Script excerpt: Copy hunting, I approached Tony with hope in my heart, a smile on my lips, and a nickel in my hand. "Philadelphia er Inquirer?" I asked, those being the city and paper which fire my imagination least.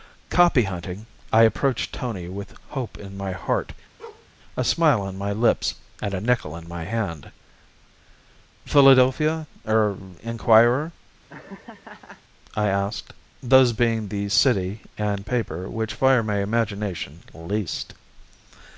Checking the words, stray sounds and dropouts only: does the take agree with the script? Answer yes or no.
no